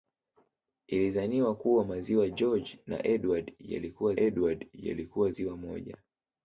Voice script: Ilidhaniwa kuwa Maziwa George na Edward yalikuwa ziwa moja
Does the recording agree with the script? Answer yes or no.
no